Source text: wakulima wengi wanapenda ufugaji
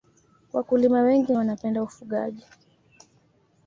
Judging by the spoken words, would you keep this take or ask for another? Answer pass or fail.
pass